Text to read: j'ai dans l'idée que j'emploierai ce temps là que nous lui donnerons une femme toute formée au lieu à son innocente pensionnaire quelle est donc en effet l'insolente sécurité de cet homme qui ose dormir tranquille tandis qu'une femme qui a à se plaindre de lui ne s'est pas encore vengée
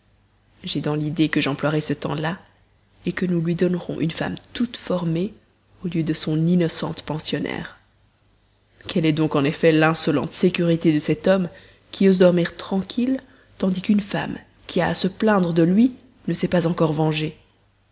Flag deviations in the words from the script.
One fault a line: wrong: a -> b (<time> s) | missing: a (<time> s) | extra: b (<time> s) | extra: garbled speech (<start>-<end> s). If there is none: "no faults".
wrong: à -> de (6.0 s)